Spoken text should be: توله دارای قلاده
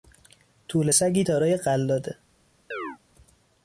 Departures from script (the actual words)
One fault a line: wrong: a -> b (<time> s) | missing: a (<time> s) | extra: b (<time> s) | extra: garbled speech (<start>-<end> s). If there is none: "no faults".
extra: سگی (0.9 s)